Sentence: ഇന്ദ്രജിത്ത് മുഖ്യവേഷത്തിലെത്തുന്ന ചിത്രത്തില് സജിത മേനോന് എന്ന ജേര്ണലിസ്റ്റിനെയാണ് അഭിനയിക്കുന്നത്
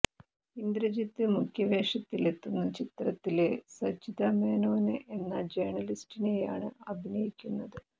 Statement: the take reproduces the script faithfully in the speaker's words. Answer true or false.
true